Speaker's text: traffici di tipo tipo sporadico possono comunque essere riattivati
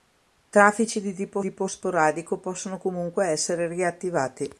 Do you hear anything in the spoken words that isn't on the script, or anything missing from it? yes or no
no